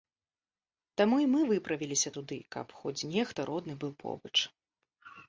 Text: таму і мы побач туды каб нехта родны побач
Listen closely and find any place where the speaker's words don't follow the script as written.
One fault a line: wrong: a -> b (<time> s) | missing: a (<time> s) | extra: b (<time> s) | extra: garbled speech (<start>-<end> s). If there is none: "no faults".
wrong: побач -> выправіліся (1.5 s)
extra: хоць (2.8 s)
extra: быў (3.8 s)